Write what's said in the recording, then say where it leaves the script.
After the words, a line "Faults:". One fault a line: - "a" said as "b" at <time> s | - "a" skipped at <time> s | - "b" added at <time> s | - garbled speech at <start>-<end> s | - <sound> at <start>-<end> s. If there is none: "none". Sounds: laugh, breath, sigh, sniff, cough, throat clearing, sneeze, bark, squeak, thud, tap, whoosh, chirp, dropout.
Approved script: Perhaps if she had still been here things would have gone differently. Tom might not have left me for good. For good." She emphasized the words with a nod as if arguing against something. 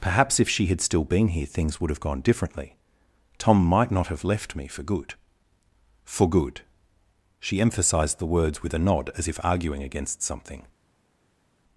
Perhaps if she had still been here things would have gone differently. Tom might not have left me for good. For good." She emphasized the words with a nod as if arguing against something.
Faults:
none